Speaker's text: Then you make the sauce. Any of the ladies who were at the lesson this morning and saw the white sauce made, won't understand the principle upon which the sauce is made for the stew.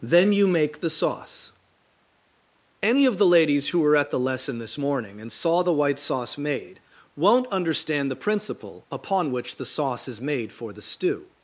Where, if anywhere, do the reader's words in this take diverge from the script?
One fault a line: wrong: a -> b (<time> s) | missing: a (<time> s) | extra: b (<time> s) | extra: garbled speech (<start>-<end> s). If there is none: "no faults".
no faults